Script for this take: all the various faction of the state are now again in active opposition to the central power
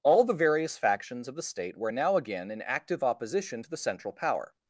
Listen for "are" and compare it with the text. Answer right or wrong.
wrong